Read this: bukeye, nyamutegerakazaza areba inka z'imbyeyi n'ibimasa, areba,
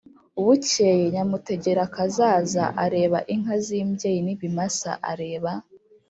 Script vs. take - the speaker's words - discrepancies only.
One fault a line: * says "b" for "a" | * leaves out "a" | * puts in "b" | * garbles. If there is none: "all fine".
all fine